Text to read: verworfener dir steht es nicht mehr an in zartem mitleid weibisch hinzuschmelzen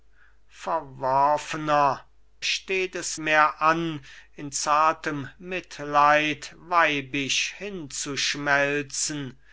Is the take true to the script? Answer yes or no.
no